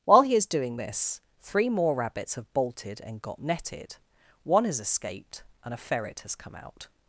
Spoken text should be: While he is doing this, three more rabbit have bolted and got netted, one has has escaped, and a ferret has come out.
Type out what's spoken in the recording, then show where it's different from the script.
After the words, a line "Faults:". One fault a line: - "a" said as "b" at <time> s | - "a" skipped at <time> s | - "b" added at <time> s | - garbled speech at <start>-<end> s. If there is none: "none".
While he is doing this, three more rabbits have bolted and got netted, one has escaped, and a ferret has come out.
Faults:
- "rabbit" said as "rabbits" at 1.9 s
- "has" skipped at 4.8 s